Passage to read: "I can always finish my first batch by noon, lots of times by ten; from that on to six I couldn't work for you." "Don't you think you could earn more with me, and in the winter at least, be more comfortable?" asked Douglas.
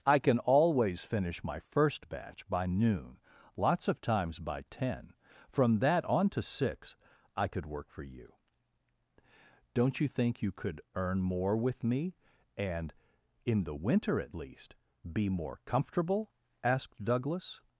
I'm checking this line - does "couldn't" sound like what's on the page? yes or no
no